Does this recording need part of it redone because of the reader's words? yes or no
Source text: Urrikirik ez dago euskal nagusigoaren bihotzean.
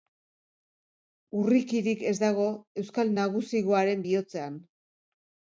no